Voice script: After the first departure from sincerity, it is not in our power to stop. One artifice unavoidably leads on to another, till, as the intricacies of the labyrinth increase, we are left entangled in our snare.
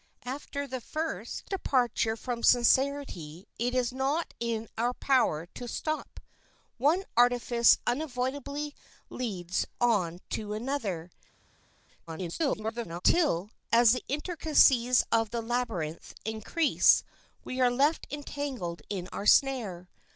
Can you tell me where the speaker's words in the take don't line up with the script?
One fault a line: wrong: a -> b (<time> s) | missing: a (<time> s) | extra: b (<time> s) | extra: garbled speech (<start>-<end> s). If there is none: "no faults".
extra: garbled speech (12.1-13.0 s)